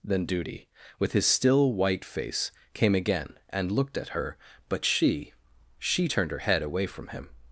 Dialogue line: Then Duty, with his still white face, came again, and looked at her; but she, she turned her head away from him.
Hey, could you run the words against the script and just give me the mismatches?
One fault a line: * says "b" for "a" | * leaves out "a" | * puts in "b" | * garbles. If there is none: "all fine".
all fine